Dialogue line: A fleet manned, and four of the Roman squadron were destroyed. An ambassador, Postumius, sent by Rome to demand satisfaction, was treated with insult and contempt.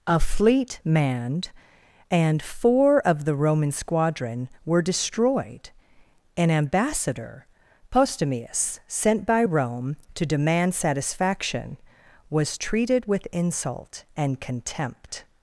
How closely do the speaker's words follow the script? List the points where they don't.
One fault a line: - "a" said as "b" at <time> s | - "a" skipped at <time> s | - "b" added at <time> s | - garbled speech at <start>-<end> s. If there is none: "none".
none